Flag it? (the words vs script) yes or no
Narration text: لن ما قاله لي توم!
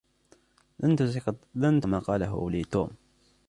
no